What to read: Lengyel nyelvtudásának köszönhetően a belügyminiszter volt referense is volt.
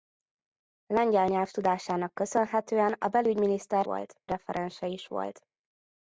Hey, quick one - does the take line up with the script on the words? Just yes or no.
yes